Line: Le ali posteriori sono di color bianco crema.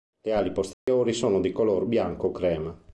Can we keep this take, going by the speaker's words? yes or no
yes